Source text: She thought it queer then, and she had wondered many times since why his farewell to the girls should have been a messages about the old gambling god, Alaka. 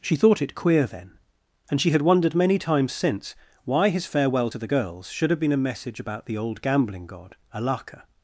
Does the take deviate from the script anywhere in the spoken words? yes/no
yes